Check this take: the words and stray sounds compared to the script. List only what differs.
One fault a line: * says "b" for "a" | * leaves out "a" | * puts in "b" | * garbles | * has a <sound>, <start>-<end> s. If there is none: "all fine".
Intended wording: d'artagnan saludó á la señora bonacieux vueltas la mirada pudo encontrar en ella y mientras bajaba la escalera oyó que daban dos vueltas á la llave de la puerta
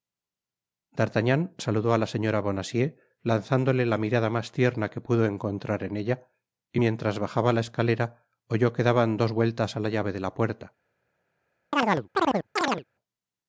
* says "lanzándole" for "vueltas"
* puts in "mas tierna que"
* has a chirp, 11.7-12.8 s